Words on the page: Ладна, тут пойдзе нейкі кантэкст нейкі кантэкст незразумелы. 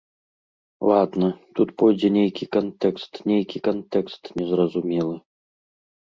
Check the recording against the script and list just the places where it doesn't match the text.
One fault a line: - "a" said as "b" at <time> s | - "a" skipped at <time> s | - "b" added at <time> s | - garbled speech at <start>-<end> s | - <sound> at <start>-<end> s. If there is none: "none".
none